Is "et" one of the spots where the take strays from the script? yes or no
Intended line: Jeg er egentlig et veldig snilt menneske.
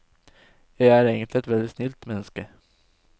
no